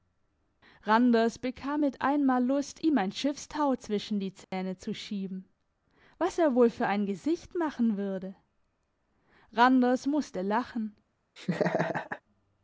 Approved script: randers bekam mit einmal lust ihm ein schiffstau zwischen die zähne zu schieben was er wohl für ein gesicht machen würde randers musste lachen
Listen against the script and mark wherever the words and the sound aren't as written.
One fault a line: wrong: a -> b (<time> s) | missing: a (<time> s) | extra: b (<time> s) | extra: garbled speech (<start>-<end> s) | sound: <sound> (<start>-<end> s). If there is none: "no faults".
sound: dropout (4.4-4.5 s)
sound: laugh (11.4-12.2 s)